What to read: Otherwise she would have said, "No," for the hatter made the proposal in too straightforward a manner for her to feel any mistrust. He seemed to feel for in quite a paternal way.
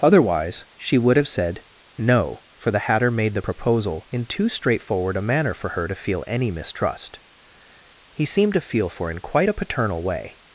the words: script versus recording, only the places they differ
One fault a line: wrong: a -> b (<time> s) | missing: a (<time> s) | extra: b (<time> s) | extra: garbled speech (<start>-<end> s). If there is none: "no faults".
no faults